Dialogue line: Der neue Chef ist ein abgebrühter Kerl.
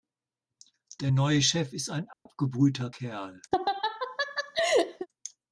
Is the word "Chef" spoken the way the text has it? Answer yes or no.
yes